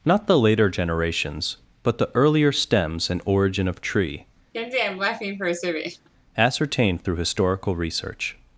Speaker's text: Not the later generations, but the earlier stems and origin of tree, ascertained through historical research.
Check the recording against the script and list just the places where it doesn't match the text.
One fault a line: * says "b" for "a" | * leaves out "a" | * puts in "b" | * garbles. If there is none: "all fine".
all fine